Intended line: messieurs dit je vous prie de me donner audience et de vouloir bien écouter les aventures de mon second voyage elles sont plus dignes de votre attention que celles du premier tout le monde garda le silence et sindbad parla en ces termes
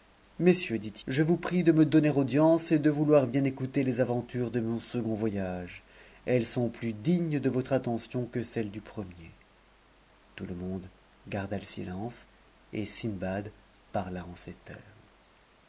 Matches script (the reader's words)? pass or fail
pass